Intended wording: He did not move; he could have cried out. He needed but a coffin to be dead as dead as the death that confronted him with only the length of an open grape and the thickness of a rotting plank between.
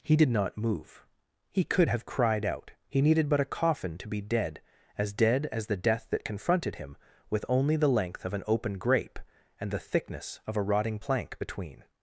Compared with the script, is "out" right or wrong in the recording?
right